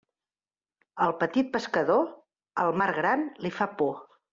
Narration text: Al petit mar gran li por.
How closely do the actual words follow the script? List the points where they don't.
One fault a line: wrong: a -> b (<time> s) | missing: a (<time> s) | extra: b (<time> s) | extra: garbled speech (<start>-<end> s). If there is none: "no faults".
extra: pescador el (1.6 s)
extra: fa (3.6 s)